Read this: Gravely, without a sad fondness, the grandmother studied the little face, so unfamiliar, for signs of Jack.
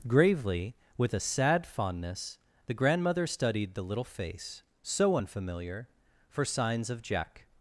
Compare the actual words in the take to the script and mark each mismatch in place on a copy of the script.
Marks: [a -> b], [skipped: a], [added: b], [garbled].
Gravely, [without -> with] a sad fondness, the grandmother studied the little face, so unfamiliar, for signs of Jack.